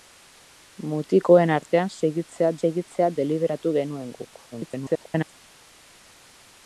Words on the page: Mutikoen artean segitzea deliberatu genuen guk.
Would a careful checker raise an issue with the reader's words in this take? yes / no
yes